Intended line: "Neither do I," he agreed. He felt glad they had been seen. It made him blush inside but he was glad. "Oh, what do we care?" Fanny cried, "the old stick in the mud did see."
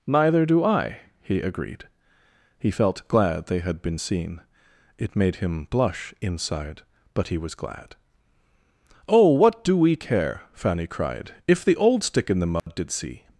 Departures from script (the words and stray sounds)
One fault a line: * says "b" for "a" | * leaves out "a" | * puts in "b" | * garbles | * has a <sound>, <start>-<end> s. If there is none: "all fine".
* puts in "if"
* has a dropout, 12.6-12.7 s